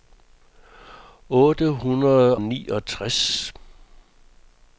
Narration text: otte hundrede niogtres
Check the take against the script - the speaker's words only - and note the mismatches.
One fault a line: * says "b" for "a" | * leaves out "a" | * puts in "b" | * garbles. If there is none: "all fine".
all fine